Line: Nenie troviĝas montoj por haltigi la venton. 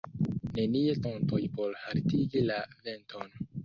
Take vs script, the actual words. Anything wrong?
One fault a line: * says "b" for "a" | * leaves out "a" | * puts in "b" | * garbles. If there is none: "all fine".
* leaves out "troviĝas"